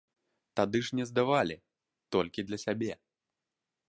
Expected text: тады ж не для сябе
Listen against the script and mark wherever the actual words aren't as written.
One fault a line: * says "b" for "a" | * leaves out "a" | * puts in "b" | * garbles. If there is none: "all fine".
* puts in "здавалі толькі"